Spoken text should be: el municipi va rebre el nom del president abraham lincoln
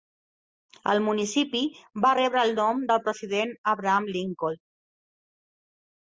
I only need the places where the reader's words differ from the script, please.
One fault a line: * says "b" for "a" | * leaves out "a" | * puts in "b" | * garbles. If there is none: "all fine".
all fine